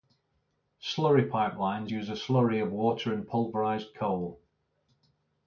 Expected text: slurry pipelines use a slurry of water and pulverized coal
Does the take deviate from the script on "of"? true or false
false